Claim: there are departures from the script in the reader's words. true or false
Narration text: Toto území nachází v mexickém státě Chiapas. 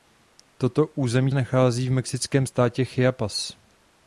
false